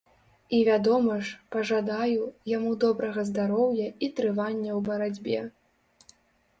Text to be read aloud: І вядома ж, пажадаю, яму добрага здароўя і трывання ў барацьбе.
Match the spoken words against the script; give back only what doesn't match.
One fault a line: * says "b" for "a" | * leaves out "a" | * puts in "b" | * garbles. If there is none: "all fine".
all fine